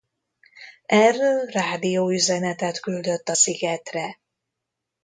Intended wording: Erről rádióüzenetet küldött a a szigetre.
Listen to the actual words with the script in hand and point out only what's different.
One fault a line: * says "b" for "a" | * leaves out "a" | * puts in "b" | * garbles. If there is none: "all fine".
* leaves out "a"